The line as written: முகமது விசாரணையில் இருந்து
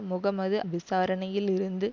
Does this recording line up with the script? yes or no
yes